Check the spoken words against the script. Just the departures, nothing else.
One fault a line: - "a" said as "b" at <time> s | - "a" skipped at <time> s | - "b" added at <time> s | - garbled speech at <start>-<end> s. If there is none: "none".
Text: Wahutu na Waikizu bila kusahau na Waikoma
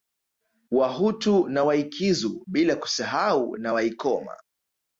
none